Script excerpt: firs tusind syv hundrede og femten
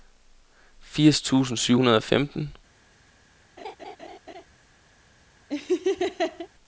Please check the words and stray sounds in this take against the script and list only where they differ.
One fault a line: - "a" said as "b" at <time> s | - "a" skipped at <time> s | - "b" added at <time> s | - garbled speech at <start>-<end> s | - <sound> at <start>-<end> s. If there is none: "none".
- laugh at 3.6-4.5 s
- laugh at 5.5-6.5 s